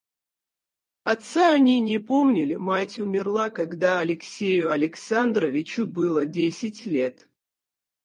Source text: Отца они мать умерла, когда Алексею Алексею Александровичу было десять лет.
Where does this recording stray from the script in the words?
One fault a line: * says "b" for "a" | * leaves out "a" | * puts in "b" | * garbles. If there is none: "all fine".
* puts in "не помнили"
* leaves out "Алексею"